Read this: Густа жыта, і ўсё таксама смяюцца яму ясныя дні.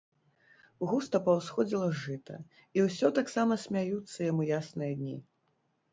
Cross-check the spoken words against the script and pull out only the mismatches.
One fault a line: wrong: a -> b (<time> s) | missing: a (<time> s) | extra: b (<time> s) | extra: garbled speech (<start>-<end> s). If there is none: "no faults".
extra: паўсходзіла (1.3 s)